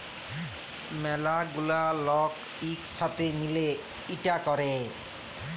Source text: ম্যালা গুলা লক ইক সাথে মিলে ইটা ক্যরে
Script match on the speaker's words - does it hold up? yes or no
yes